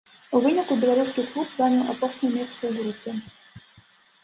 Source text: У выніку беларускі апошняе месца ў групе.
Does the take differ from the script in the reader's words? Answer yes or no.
yes